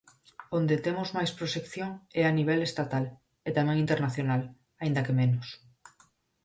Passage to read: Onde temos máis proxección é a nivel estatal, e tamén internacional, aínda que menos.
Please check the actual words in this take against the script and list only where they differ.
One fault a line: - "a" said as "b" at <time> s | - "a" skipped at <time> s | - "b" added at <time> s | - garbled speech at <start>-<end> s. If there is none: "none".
none